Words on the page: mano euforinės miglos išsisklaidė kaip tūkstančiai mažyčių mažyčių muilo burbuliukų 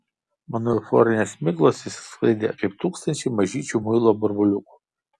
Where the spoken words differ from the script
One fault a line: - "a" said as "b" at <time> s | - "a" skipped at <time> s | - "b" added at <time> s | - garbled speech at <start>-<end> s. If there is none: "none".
- "mažyčių" skipped at 3.8 s